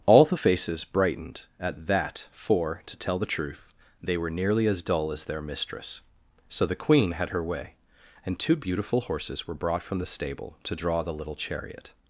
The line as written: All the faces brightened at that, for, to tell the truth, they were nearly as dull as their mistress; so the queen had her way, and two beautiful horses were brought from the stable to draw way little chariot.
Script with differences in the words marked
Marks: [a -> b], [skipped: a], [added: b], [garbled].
All the faces brightened at that, for, to tell the truth, they were nearly as dull as their mistress; so the queen had her way, and two beautiful horses were brought from the stable to draw [way -> the] little chariot.